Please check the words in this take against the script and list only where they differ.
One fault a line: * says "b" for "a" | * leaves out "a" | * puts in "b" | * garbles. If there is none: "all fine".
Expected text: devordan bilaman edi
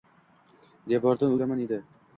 all fine